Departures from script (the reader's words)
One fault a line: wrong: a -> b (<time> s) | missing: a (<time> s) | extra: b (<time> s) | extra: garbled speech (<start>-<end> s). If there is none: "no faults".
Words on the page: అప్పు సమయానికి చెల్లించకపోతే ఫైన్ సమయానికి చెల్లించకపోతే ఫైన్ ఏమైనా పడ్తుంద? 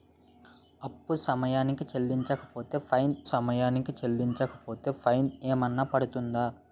no faults